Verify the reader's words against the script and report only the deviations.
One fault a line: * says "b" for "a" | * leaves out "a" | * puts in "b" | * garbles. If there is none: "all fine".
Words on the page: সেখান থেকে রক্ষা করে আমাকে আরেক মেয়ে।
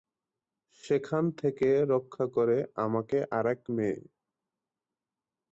all fine